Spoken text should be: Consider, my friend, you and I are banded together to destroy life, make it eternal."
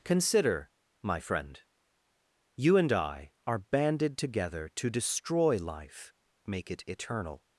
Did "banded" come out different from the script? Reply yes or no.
no